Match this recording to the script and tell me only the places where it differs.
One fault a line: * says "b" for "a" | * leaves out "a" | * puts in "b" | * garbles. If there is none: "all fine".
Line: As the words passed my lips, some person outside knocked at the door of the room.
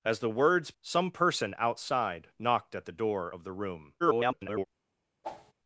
* leaves out "passed my lips"
* garbles